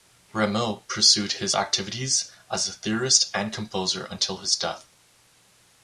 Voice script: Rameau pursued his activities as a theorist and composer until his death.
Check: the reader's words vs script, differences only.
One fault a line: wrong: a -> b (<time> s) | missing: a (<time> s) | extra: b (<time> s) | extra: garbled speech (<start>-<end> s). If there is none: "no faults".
no faults